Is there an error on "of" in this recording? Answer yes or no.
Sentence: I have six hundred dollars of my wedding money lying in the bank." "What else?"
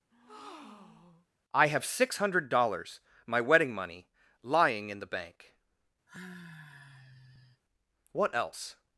yes